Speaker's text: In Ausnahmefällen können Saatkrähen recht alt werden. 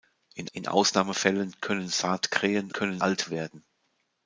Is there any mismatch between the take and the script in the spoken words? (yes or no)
yes